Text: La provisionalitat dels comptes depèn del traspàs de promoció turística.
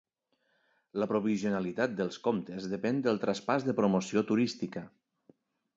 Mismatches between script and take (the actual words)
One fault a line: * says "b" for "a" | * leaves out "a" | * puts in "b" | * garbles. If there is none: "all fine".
all fine